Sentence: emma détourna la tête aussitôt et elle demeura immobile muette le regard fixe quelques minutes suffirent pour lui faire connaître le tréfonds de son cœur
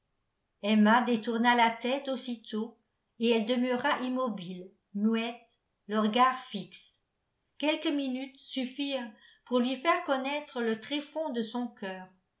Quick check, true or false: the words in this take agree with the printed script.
true